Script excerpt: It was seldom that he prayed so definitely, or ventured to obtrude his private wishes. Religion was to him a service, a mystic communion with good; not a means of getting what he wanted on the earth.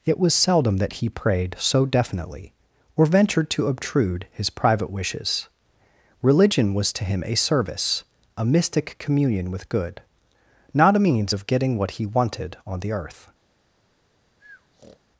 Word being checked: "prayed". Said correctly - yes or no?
yes